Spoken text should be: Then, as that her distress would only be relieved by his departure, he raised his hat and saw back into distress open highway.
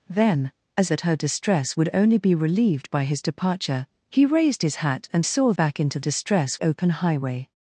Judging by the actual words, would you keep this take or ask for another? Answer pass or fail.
pass